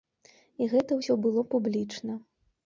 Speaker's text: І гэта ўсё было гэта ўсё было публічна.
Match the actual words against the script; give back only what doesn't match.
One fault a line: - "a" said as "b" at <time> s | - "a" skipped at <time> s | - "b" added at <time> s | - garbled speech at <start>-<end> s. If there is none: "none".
- "гэта ўсё было" skipped at 1.4 s